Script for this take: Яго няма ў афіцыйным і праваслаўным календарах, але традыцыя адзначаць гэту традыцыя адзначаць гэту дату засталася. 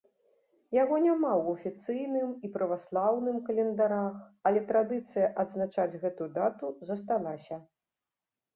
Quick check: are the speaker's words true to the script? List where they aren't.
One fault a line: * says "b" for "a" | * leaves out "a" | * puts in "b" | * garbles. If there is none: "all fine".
* leaves out "традыцыя адзначаць гэту"